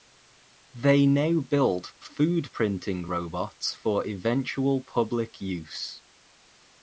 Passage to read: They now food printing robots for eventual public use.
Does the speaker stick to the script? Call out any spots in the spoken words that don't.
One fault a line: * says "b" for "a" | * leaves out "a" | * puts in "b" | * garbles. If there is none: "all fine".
* puts in "build"